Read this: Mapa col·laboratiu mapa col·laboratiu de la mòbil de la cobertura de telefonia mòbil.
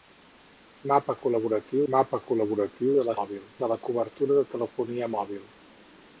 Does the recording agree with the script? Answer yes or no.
yes